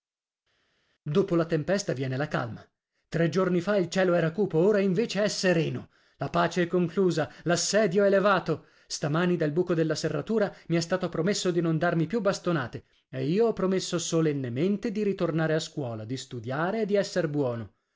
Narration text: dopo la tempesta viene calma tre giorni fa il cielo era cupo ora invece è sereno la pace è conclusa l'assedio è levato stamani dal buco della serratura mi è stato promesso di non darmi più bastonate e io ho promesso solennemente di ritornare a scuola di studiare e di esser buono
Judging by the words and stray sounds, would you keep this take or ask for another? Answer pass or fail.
fail